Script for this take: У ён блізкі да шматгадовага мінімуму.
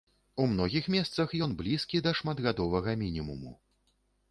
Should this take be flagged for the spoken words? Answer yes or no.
yes